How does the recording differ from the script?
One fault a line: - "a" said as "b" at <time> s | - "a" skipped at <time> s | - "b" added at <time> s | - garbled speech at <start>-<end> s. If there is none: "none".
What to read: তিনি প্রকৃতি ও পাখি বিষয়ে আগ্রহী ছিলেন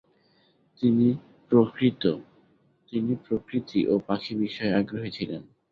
none